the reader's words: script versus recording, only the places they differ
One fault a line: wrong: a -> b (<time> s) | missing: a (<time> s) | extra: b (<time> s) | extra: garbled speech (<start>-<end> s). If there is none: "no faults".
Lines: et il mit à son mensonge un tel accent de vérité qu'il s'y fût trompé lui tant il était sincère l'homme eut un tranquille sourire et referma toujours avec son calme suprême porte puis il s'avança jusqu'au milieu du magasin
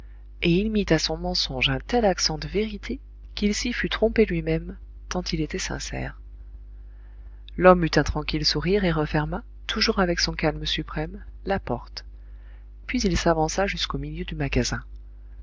extra: même (4.4 s)
extra: la (11.4 s)